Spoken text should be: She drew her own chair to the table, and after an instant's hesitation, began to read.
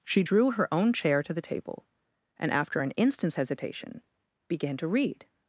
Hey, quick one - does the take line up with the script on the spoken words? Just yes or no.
yes